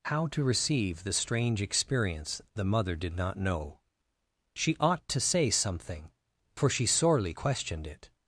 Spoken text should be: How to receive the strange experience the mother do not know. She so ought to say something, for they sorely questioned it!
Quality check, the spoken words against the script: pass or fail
fail